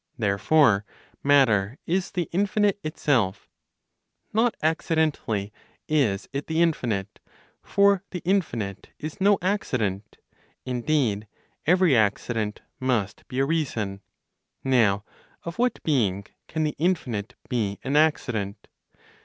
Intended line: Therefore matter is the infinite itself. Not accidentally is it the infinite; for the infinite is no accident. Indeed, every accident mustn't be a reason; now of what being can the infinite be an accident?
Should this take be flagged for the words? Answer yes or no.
yes